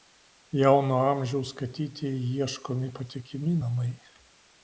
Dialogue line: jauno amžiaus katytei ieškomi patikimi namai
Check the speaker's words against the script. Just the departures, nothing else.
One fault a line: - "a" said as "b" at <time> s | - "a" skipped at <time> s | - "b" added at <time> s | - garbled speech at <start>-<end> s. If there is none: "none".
none